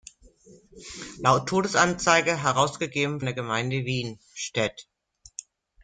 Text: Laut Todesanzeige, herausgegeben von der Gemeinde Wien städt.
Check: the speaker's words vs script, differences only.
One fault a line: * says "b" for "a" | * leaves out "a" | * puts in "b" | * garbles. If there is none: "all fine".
* leaves out "von"